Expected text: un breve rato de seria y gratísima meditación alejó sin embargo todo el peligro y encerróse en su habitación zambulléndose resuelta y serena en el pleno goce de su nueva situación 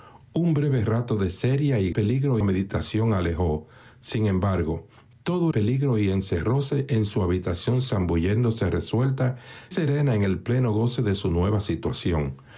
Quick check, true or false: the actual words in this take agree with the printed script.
false